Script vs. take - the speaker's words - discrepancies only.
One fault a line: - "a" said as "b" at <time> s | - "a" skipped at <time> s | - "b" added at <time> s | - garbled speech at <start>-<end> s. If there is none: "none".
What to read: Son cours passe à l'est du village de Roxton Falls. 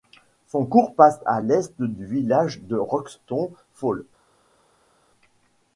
none